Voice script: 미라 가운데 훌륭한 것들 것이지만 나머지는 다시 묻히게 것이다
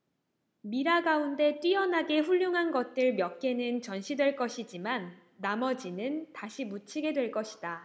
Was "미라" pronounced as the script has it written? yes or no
yes